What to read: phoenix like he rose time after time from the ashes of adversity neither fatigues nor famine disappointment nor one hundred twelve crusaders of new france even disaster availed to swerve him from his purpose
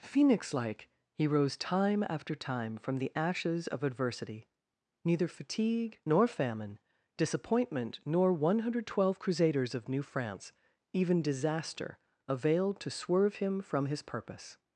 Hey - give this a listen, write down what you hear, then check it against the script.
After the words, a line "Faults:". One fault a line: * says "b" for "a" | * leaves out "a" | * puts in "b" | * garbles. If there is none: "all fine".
phoenix like he rose time after time from the ashes of adversity neither fatigue nor famine disappointment nor one hundred twelve crusaders of new france even disaster availed to swerve him from his purpose
Faults:
* says "fatigue" for "fatigues"